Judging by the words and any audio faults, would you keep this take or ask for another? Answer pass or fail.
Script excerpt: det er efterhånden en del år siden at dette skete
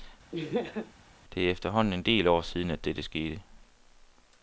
fail